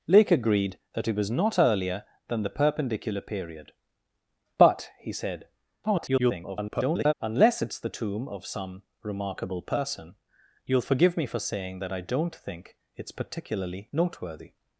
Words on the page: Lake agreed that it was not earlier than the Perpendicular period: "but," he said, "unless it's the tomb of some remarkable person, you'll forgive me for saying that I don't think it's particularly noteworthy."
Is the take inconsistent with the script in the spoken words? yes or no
yes